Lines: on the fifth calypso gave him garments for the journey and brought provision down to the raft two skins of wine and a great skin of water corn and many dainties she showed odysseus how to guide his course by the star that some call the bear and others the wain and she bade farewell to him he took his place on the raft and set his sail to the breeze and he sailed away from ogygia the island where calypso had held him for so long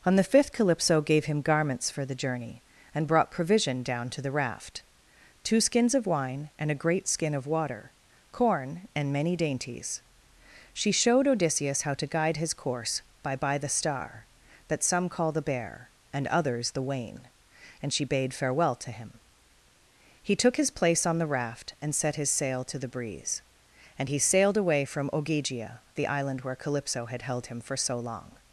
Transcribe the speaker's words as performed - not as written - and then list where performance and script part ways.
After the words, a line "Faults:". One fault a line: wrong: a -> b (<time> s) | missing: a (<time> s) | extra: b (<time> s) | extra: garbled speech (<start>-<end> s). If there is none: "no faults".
on the fifth calypso gave him garments for the journey and brought provision down to the raft two skins of wine and a great skin of water corn and many dainties she showed odysseus how to guide his course by by the star that some call the bear and others the wain and she bade farewell to him he took his place on the raft and set his sail to the breeze and he sailed away from ogygia the island where calypso had held him for so long
Faults:
extra: by (13.3 s)